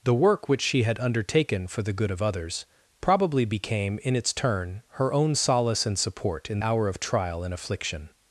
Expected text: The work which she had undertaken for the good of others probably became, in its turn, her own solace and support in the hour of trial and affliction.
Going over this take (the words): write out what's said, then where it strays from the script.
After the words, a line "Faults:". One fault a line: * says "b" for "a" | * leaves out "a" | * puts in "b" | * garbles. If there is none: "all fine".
The work which she had undertaken for the good of others probably became, in its turn, her own solace and support in hour of trial and affliction.
Faults:
* leaves out "the"